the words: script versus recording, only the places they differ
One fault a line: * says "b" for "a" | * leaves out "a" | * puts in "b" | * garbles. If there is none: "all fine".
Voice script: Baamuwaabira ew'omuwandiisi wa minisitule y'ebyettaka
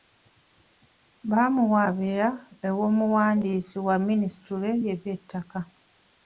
all fine